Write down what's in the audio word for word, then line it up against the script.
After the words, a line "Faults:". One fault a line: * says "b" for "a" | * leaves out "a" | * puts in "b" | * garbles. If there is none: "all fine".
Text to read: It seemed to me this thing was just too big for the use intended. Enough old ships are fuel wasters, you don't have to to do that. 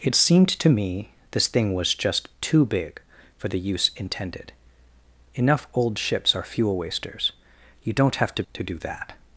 It seemed to me this thing was just too big for the use intended. Enough old ships are fuel wasters, you don't have to to do that.
Faults:
all fine